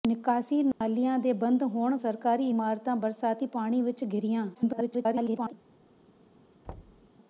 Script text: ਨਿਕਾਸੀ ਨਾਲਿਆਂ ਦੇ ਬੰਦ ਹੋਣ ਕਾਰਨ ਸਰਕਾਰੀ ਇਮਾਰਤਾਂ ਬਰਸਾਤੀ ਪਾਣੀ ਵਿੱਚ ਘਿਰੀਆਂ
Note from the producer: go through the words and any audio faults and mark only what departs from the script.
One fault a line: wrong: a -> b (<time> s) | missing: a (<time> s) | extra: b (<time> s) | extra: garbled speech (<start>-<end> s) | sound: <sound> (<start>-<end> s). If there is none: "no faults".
sound: dropout (0.7-0.8 s)
missing: ਕਾਰਨ (2.0 s)
extra: garbled speech (4.5-5.5 s)
sound: thud (6.6-7.1 s)